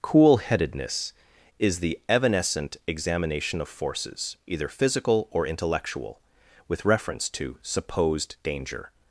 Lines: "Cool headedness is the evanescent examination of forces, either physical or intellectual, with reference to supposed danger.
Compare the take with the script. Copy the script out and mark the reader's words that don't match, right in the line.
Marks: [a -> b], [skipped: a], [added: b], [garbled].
"Cool headedness is the evanescent examination of forces, either physical or intellectual, with reference to supposed danger.